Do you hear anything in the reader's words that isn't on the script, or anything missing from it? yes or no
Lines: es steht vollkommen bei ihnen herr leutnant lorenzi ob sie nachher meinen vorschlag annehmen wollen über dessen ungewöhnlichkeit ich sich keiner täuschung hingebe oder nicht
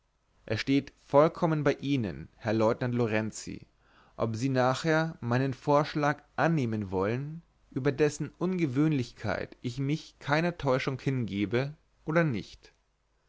yes